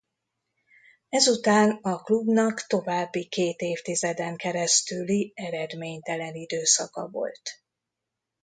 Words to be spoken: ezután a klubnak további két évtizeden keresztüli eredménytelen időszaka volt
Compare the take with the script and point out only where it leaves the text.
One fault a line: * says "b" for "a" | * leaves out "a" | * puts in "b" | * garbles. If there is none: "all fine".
all fine